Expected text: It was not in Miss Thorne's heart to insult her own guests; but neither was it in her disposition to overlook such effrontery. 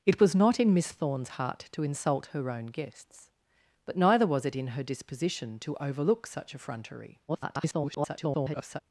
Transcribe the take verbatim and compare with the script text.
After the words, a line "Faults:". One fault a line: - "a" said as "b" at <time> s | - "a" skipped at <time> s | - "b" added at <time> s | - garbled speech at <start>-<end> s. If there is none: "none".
It was not in Miss Thorne's heart to insult her own guests; but neither was it in her disposition to overlook such effrontery. [garbled]
Faults:
- garbled speech at 7.3-8.8 s